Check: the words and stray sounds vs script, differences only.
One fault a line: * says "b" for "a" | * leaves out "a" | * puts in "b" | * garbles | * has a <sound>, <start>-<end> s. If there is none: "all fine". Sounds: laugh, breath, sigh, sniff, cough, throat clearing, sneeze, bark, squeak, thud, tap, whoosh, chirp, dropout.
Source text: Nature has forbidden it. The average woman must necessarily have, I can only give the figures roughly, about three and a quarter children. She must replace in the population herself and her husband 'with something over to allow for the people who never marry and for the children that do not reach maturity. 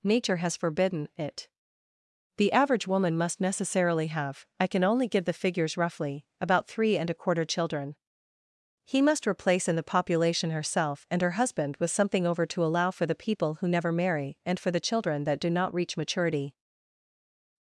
* says "He" for "She"